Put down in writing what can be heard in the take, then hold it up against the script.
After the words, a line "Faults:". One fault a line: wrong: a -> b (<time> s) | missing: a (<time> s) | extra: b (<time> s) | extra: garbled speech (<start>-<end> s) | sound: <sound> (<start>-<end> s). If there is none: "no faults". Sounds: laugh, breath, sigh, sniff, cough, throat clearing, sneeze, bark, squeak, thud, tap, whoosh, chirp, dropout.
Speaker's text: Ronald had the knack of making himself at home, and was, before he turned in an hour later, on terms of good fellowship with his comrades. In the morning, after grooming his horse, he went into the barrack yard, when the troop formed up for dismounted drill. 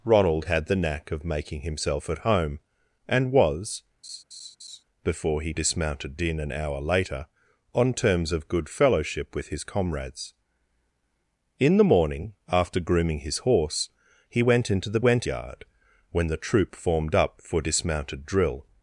Ronald had the knack of making himself at home, and was, before he dismounted in an hour later, on terms of good fellowship with his comrades. In the morning, after grooming his horse, he went into the went yard, when the troop formed up for dismounted drill.
Faults:
sound: laugh (4.0-4.8 s)
wrong: turned -> dismounted (5.5 s)
wrong: barrack -> went (15.0 s)